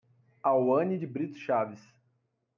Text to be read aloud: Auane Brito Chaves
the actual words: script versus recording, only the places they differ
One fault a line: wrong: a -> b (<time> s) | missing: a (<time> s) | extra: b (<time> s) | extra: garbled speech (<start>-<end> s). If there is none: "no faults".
extra: de (0.9 s)